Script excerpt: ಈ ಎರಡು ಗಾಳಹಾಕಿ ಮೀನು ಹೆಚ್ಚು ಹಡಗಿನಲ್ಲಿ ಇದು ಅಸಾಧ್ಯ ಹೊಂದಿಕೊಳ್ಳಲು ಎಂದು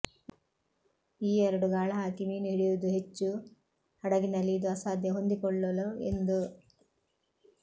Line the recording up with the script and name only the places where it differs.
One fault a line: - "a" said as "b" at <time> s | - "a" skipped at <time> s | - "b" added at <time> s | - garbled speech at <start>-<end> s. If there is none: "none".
- "ಹಿಡಿಯುವುದು" added at 2.5 s